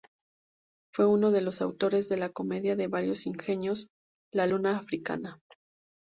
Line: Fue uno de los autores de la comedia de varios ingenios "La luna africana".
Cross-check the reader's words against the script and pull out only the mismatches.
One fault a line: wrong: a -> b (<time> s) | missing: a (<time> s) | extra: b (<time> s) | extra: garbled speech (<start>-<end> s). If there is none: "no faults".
no faults